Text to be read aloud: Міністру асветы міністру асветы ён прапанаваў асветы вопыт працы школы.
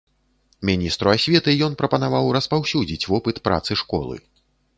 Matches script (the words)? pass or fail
fail